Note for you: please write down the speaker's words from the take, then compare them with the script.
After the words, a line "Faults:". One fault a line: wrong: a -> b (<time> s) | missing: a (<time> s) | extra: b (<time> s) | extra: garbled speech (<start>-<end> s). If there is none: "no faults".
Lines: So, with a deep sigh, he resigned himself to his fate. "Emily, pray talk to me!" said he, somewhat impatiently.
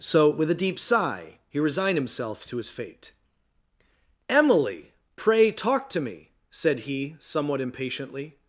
So, with a deep sigh, he resigned himself to his fate. "Emily, pray talk to me!" said he, somewhat impatiently.
Faults:
no faults